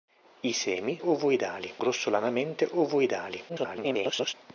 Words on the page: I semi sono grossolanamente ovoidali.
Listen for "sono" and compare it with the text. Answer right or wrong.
wrong